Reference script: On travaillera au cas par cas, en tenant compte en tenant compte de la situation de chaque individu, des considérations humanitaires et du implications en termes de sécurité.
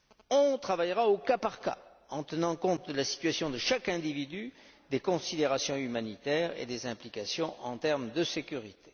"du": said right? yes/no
no